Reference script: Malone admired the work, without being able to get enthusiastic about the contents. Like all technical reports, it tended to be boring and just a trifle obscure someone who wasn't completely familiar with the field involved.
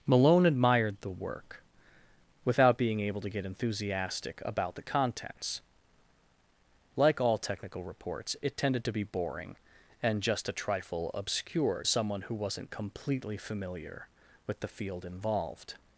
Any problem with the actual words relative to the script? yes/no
no